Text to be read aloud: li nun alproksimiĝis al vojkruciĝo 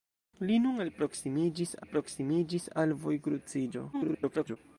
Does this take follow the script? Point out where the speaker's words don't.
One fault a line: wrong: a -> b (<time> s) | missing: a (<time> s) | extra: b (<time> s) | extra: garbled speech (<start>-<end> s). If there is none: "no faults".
extra: alproksimiĝis (1.8 s)
extra: garbled speech (3.9-4.6 s)